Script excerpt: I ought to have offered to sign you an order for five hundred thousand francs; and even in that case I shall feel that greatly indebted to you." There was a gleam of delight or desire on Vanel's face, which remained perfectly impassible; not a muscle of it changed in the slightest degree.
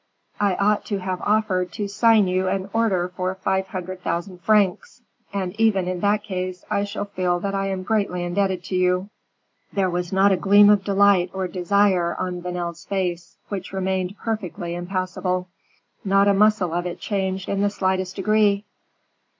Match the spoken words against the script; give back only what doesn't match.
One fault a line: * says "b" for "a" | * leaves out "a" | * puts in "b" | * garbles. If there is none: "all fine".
* puts in "I am"
* puts in "not"